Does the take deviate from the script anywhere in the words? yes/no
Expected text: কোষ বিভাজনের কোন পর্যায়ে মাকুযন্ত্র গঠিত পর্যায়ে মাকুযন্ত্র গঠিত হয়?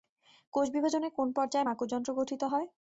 yes